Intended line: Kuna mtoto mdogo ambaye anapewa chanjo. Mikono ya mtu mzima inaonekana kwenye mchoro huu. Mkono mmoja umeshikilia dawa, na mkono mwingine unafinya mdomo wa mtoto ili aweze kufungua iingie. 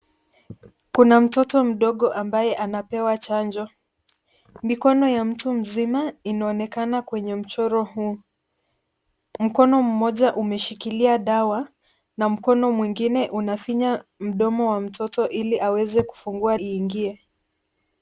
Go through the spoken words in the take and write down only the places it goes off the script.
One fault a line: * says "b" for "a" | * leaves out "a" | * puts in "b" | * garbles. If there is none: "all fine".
all fine